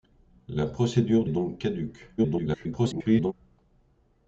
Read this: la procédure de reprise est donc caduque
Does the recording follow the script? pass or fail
fail